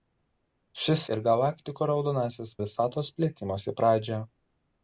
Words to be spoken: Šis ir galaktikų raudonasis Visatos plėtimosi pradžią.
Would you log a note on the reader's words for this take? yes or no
no